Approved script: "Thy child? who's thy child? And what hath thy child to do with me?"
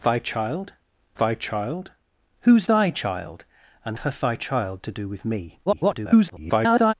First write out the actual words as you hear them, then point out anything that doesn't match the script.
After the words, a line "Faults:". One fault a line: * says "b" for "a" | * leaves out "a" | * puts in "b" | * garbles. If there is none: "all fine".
"Thy child thy child? who's thy child? And hath thy child to do with me?" [garbled]
Faults:
* puts in "thy child"
* leaves out "what"
* garbles